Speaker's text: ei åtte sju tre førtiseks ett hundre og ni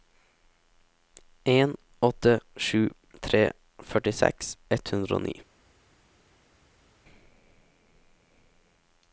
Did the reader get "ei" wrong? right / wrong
wrong